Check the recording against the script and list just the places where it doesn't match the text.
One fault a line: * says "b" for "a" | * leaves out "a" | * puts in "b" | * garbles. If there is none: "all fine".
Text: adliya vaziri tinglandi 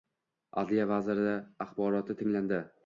* puts in "axboroti"